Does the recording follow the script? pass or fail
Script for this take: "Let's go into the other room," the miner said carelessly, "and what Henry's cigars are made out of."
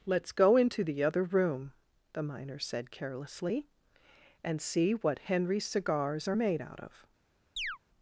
fail